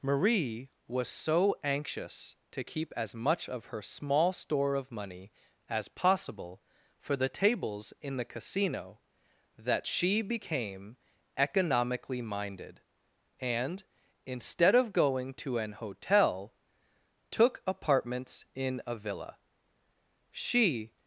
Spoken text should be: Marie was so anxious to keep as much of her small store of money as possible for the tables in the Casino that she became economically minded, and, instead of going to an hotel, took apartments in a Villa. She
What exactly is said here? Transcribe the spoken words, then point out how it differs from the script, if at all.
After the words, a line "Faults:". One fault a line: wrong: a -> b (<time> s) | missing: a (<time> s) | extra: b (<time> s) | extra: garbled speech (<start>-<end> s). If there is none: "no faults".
Marie was so anxious to keep as much of her small store of money as possible for the tables in the Casino that she became economically minded, and, instead of going to an hotel, took apartments in a Villa. She
Faults:
no faults